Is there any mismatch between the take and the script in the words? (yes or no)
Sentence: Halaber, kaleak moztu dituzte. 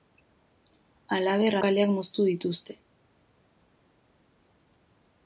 no